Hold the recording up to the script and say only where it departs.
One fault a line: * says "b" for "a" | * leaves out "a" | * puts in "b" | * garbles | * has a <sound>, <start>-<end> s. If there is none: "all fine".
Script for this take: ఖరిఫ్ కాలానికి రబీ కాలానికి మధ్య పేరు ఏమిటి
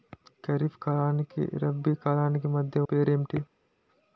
all fine